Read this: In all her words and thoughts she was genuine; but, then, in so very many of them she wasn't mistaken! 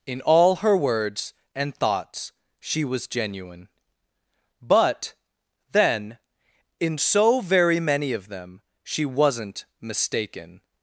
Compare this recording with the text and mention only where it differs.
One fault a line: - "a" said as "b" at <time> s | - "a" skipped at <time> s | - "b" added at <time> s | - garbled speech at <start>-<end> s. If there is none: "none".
none